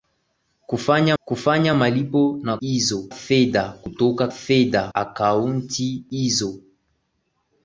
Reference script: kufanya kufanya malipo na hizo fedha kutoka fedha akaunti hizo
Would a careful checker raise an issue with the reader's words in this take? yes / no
no